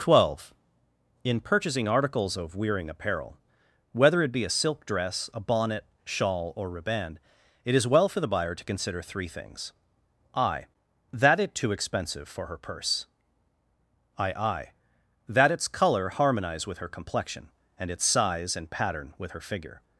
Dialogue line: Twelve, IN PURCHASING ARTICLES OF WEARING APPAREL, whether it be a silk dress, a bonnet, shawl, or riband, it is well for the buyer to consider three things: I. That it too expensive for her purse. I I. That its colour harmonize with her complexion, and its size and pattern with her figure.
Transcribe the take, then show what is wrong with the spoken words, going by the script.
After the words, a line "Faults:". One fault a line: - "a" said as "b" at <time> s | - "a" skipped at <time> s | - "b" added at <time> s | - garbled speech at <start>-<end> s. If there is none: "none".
Twelve, IN PURCHASING ARTICLES OF WEARING APPAREL, whether it be a silk dress, a bonnet, shawl, or riband, it is well for the buyer to consider three things: I. That it too expensive for her purse. I I. That its colour harmonize with her complexion, and its size and pattern with her figure.
Faults:
none